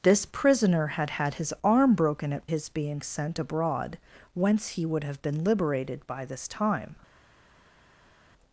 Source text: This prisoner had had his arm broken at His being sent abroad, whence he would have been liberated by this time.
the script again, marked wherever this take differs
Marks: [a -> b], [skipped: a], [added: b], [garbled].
This prisoner had had his arm broken at His being sent abroad, whence he would have been liberated by this time.